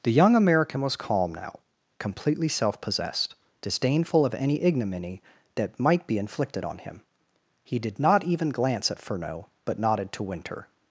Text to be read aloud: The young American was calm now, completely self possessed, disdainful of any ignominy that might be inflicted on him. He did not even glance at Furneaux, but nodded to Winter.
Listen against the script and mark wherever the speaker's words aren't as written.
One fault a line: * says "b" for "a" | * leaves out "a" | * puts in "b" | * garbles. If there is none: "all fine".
all fine